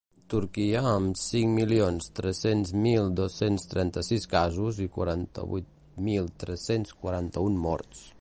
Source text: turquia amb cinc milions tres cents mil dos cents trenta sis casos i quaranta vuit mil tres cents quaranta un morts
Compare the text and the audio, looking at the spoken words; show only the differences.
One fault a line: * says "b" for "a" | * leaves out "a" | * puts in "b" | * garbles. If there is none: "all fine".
all fine